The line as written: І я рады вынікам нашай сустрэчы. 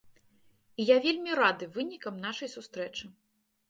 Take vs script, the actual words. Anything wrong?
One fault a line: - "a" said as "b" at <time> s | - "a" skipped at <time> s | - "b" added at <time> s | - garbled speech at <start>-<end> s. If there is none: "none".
- "вельмі" added at 1.1 s